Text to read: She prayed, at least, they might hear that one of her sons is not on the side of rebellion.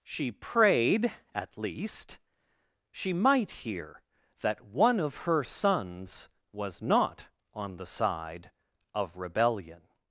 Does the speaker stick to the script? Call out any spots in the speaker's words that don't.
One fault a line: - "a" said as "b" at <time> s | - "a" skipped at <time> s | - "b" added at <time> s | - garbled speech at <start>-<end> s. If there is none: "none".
- "they" said as "she" at 2.9 s
- "is" said as "was" at 6.5 s